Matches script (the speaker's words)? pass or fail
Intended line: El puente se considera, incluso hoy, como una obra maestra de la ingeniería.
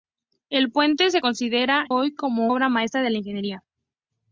fail